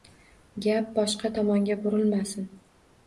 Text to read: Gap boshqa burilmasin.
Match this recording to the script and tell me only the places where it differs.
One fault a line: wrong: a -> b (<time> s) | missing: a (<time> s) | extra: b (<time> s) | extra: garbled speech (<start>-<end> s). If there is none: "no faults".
extra: tomonga (1.4 s)